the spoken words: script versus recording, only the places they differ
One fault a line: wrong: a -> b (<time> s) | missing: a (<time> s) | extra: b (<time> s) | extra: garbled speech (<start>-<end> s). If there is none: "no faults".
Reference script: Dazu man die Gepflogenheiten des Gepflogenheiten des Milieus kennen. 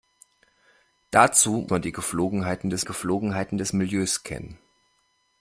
no faults